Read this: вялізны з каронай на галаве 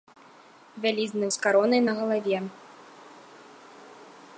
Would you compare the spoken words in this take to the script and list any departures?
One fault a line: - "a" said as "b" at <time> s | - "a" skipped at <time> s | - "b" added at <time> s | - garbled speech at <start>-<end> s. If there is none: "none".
none